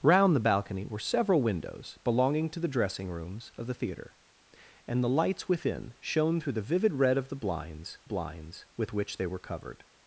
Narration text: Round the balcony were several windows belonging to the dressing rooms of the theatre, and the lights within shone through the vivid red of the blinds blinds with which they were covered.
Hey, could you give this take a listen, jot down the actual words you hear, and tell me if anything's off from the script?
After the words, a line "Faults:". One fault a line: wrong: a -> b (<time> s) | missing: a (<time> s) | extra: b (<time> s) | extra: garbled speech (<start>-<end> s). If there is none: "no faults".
Round the balcony were several windows belonging to the dressing rooms of the theatre, and the lights within shone through the vivid red of the blinds blinds with which they were covered.
Faults:
no faults